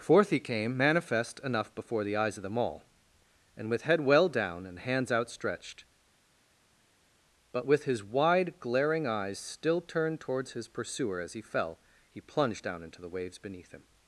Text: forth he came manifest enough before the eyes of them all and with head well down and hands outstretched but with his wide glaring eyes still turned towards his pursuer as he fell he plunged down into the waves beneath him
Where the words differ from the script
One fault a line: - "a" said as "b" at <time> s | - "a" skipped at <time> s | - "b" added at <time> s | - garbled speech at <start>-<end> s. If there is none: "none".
none